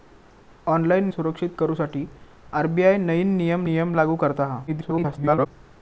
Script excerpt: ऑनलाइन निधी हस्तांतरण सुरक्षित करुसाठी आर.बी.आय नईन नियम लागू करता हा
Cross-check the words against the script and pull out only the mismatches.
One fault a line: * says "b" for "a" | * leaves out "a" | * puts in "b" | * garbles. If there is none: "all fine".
* leaves out "निधी हस्तांतरण"
* puts in "नियम"
* garbles